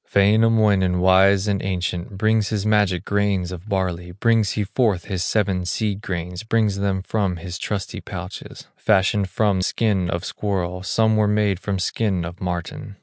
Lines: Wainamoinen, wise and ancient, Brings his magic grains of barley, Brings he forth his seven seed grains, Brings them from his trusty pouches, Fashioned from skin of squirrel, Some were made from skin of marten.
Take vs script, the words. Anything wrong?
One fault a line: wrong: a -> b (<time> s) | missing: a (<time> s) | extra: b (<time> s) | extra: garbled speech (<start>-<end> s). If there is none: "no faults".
no faults